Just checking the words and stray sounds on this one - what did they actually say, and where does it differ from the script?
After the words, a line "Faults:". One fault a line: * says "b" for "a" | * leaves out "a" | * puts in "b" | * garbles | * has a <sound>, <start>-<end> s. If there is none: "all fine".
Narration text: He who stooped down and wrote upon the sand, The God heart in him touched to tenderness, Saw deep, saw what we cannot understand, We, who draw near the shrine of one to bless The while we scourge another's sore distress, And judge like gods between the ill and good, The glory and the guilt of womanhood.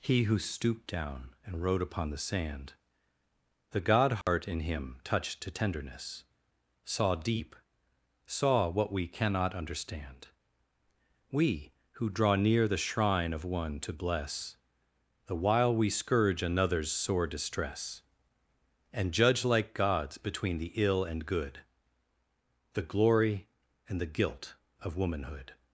He who stooped down and wrote upon the sand, The God heart in him touched to tenderness, Saw deep, saw what we cannot understand, We, who draw near the shrine of one to bless The while we scourge another's sore distress, And judge like gods between the ill and good, The glory and the guilt of womanhood.
Faults:
* has a dropout, 4.2-4.3 s